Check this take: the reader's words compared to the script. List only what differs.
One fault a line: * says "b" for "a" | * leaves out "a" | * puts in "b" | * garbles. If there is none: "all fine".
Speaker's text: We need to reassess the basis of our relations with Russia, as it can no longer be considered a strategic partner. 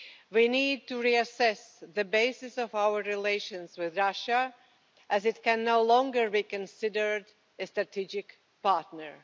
all fine